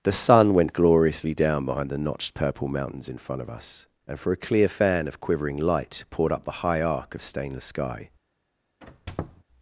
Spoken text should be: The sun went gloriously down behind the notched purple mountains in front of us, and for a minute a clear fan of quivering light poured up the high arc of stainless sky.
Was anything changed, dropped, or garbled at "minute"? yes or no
yes